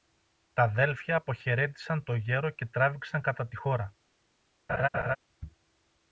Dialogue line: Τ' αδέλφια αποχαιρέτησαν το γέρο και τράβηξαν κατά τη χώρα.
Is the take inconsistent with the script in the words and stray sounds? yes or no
yes